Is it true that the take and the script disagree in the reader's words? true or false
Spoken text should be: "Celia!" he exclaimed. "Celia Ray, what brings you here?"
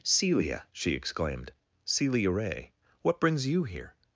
true